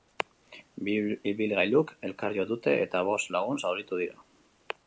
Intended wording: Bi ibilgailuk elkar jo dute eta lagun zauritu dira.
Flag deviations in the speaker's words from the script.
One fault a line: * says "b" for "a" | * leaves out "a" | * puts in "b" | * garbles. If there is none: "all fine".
* puts in "bost"